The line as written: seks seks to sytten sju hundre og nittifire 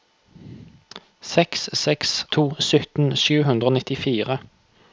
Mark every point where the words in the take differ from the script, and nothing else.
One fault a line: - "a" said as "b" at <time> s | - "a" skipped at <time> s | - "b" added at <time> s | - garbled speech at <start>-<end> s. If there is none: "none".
none